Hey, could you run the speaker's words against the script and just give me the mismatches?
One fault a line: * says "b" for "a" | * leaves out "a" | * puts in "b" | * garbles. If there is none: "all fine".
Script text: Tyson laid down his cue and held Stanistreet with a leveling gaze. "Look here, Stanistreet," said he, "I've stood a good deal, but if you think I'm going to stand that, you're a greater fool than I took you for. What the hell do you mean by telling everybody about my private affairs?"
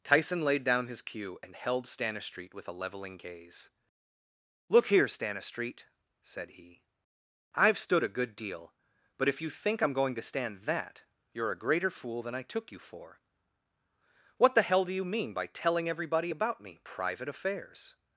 * says "me" for "my"